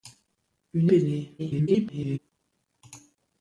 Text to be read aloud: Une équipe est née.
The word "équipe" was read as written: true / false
false